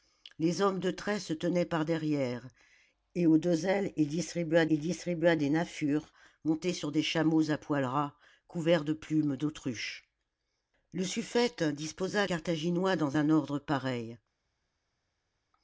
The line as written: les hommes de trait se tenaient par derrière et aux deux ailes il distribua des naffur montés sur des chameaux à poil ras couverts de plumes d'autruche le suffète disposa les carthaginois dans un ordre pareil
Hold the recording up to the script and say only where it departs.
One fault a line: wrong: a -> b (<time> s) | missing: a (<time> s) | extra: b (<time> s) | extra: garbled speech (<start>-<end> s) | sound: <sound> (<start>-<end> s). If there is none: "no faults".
extra: il distribua (4.7 s)
missing: les (12.2 s)